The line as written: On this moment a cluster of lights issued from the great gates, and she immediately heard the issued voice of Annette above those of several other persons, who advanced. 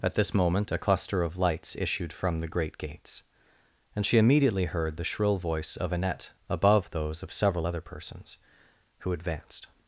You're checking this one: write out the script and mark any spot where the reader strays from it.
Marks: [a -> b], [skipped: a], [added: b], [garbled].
[On -> At] this moment a cluster of lights issued from the great gates, and she immediately heard the [issued -> shrill] voice of Annette above those of several other persons, who advanced.